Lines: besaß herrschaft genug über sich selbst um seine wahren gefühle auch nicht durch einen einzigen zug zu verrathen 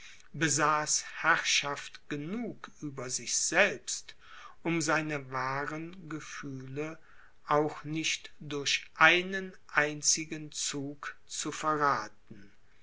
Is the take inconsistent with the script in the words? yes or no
no